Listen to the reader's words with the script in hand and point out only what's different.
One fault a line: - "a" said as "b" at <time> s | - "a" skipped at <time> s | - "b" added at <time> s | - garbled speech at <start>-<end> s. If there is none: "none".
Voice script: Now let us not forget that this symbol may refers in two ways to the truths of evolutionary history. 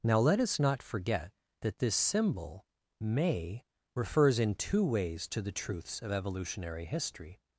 none